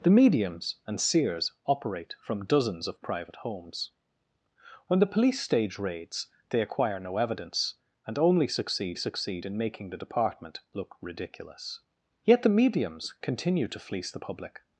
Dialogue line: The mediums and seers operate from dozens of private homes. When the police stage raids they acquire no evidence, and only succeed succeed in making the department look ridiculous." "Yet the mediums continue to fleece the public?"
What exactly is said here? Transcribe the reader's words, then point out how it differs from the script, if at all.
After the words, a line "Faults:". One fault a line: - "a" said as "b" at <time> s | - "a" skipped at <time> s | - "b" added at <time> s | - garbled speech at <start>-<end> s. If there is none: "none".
The mediums and seers operate from dozens of private homes. When the police stage raids they acquire no evidence, and only succeed succeed in making the department look ridiculous." "Yet the mediums continue to fleece the public?"
Faults:
none